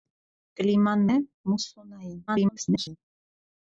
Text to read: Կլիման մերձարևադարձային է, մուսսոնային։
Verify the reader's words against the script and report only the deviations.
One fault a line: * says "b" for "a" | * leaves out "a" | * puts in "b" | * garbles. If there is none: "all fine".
* leaves out "մերձարևադարձային"
* garbles